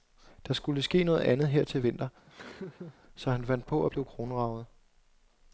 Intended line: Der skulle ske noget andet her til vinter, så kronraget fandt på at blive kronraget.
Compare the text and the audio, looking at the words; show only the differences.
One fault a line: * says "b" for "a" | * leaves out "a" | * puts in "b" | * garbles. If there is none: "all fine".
* says "han" for "kronraget"